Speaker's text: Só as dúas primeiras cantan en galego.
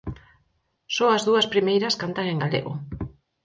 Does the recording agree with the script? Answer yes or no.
yes